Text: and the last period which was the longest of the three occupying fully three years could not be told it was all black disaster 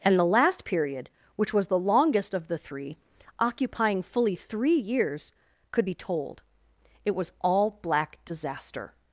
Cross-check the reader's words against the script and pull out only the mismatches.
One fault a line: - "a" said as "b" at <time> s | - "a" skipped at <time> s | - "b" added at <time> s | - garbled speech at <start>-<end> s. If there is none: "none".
- "not" skipped at 5.8 s